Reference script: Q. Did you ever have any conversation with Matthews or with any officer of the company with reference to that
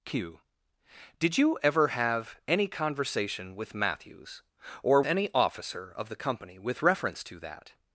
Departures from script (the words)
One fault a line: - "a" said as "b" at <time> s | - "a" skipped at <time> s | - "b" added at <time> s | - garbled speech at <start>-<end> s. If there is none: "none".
- "with" skipped at 5.0 s